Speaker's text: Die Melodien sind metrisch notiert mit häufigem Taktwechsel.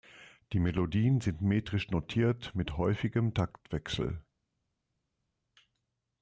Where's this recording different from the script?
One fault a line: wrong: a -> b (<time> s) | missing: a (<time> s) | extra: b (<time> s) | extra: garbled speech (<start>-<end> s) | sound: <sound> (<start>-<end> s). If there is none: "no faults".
no faults